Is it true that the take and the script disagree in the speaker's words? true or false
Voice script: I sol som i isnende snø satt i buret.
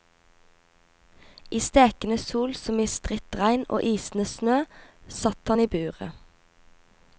true